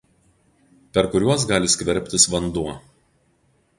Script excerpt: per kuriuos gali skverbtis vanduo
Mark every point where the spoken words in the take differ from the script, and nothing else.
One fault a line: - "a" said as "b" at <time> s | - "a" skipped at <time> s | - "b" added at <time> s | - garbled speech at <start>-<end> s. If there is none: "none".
none